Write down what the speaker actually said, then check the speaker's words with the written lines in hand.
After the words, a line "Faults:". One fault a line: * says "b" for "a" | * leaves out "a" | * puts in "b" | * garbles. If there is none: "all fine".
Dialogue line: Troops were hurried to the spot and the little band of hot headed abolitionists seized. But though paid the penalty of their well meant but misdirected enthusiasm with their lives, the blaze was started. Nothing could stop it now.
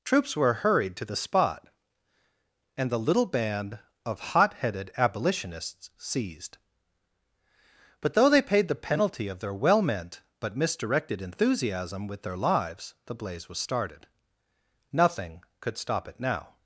Troops were hurried to the spot and the little band of hot headed abolitionists seized. But though they paid the penalty of their well meant but misdirected enthusiasm with their lives, the blaze was started. Nothing could stop it now.
Faults:
* puts in "they"